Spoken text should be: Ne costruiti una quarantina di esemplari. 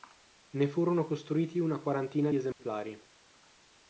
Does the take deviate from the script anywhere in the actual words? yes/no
yes